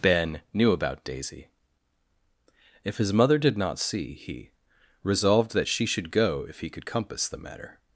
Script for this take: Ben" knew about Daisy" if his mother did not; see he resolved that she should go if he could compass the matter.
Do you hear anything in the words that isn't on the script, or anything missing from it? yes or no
no